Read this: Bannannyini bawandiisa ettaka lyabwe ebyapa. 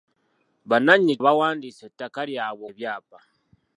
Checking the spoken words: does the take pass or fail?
pass